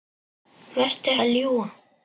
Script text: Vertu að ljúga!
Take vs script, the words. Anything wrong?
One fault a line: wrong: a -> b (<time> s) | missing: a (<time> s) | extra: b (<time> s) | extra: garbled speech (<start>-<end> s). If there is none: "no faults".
no faults